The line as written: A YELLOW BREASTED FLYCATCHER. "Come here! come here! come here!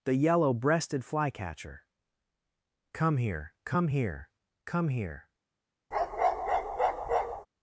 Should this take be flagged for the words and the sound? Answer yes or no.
yes